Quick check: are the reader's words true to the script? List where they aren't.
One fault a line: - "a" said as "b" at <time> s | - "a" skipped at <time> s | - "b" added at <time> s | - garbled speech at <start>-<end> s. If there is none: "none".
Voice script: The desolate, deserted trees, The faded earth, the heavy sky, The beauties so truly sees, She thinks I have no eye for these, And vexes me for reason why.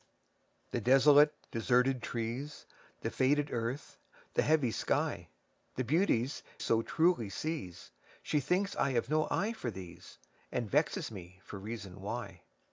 none